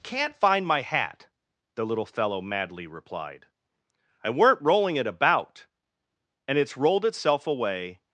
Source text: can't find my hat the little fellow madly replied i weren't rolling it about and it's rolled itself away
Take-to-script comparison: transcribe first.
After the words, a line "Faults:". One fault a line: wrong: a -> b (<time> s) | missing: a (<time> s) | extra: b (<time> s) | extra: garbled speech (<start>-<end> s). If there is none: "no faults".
can't find my hat the little fellow madly replied i weren't rolling it about and it's rolled itself away
Faults:
no faults